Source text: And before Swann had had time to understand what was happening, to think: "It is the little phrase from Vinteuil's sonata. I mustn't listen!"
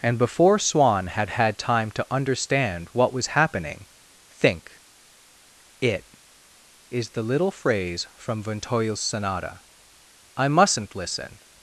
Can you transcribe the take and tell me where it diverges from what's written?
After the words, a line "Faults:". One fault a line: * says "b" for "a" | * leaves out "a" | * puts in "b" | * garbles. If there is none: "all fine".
And before Swann had had time to understand what was happening, think: "It is the little phrase from Vinteuil's sonata. I mustn't listen!"
Faults:
* leaves out "to"